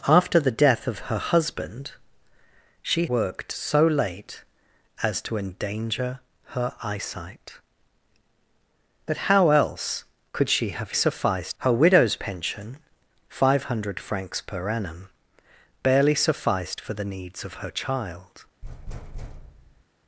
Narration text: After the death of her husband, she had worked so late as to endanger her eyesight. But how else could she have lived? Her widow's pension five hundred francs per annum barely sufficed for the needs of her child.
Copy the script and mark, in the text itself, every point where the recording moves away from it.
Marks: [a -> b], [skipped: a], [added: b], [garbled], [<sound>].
After the death of her husband, she [skipped: had] worked so late as to endanger her eyesight. But how else could she have [lived? -> sufficed] Her widow's pension five hundred francs per annum barely sufficed for the needs of her child. [thud]